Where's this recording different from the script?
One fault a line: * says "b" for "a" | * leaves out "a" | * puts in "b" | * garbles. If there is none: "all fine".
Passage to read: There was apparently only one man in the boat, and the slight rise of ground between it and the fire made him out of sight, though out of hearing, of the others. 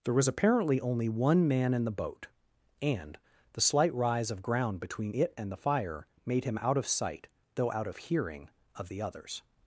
all fine